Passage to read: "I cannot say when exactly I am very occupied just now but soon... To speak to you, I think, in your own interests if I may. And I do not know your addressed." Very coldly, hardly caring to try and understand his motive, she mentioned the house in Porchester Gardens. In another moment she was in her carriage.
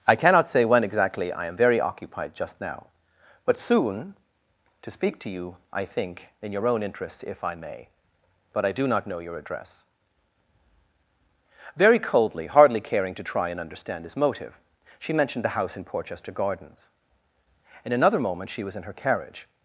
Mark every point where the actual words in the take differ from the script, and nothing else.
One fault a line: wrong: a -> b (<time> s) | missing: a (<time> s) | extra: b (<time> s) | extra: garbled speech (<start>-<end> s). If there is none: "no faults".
wrong: And -> But (8.5 s)
wrong: addressed -> address (9.4 s)